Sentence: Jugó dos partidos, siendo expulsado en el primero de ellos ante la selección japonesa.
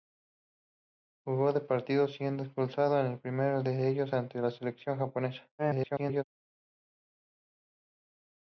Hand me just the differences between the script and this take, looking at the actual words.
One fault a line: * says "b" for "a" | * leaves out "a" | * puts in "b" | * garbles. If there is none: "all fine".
* garbles